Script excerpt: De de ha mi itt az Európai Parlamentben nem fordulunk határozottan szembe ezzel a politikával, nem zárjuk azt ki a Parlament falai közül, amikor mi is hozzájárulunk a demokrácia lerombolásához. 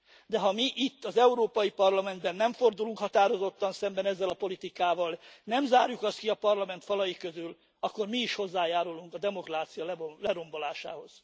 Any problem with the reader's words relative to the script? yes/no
yes